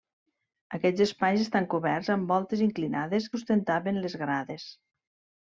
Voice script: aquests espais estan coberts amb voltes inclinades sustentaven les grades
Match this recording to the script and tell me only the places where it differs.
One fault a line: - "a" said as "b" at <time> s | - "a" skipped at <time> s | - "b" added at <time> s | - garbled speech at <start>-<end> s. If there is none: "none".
none